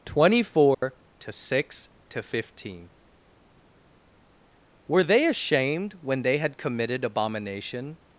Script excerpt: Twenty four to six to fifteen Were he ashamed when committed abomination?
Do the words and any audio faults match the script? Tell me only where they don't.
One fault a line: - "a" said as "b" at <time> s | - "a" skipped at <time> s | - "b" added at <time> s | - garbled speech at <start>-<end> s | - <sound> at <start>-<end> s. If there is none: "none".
- dropout at 0.7-0.8 s
- "he" said as "they" at 5.0 s
- "they had" added at 6.2 s